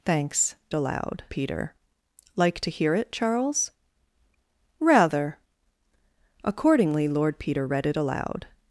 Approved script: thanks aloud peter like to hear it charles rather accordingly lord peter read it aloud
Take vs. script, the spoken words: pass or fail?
pass